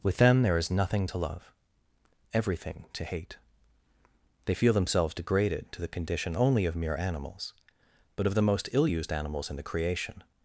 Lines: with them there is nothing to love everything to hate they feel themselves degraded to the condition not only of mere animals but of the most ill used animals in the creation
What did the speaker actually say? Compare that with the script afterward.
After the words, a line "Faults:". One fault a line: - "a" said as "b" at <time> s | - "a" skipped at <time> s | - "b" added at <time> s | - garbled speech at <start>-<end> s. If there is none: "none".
with them there is nothing to love everything to hate they feel themselves degraded to the condition only of mere animals but of the most ill used animals in the creation
Faults:
- "not" skipped at 6.4 s